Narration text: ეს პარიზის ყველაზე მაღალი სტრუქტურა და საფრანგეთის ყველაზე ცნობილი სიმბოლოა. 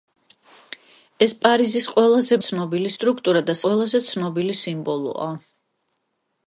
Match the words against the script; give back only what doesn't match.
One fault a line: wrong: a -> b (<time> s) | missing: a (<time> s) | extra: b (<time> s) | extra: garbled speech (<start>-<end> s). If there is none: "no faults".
wrong: მაღალი -> ცნობილი (2.5 s)
missing: საფრანგეთის (3.6 s)